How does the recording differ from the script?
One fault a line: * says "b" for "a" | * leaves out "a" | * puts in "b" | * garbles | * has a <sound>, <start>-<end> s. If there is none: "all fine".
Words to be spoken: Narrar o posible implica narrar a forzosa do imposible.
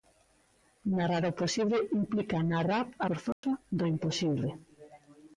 * has a dropout, 3.3-3.4 s